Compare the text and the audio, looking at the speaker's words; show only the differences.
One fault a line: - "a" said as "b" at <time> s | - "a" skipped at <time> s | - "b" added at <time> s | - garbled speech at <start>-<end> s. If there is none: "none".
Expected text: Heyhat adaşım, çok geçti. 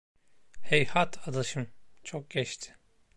none